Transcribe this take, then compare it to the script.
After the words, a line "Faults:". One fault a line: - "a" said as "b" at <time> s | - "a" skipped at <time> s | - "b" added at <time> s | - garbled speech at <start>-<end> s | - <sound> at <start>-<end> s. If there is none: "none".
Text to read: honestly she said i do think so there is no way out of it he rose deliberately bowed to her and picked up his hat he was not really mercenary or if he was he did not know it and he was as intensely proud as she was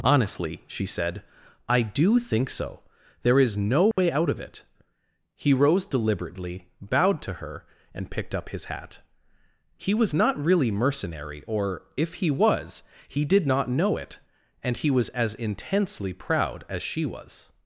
honestly she said i do think so there is no way out of it he rose deliberately bowed to her and picked up his hat he was not really mercenary or if he was he did not know it and he was as intensely proud as she was
Faults:
- dropout at 3.9-4.0 s